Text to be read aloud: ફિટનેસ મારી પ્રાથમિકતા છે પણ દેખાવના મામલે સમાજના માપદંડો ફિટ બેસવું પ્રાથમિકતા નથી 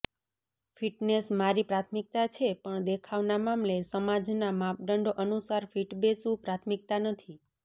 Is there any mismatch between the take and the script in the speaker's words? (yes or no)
yes